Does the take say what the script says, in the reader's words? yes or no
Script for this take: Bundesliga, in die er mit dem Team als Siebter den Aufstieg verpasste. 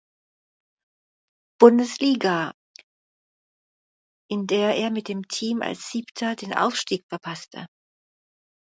no